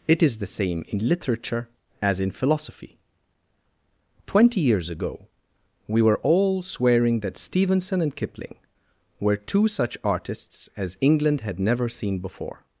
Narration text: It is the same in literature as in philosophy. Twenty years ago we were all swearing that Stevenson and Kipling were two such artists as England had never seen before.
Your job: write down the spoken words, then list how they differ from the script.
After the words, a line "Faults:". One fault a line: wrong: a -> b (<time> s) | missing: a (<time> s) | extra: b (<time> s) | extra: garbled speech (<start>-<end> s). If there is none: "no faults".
It is the same in literature as in philosophy. Twenty years ago we were all swearing that Stevenson and Kipling were two such artists as England had never seen before.
Faults:
no faults